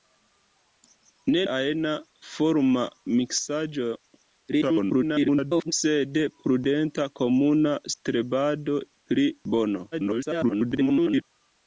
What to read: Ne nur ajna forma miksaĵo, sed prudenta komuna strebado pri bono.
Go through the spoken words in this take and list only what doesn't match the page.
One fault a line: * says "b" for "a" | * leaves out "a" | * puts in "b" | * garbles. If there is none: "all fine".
* leaves out "nur"
* garbles
* garbles